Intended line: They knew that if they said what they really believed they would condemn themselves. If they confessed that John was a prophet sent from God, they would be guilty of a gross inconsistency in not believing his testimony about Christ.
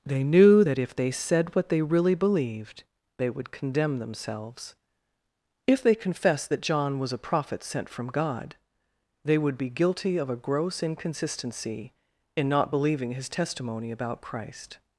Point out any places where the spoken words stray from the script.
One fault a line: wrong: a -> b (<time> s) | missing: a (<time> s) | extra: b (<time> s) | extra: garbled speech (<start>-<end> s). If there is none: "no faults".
no faults